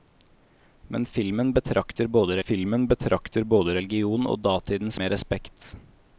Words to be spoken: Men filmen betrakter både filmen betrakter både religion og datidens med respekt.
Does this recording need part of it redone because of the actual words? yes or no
no